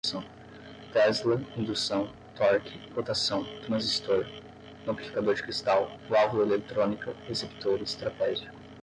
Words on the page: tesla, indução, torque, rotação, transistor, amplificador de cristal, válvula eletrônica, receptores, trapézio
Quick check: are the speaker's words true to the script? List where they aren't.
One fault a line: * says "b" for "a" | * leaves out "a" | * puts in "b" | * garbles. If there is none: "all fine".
all fine